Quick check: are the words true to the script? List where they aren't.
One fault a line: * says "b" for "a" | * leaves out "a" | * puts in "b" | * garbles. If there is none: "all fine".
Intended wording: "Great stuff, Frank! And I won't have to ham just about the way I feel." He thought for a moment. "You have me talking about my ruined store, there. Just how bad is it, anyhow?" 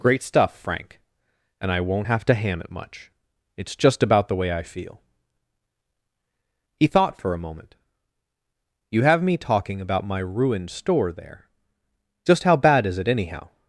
* puts in "it much it's"